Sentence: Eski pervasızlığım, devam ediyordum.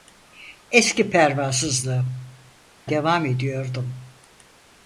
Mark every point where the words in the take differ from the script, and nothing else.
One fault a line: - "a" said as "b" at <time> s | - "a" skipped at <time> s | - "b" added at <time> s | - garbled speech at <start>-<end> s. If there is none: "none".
none